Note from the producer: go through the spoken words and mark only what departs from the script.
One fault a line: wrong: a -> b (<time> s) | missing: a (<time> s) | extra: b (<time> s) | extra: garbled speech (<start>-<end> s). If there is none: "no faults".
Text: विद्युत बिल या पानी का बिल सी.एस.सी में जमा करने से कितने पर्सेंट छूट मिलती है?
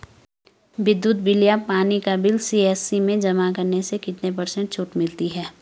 no faults